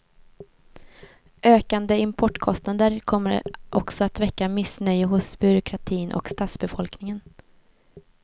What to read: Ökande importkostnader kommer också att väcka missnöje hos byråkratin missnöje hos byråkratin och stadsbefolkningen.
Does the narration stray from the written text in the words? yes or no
yes